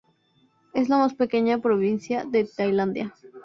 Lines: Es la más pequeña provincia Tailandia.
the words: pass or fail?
fail